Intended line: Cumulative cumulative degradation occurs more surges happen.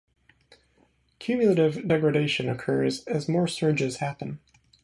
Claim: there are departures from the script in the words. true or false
true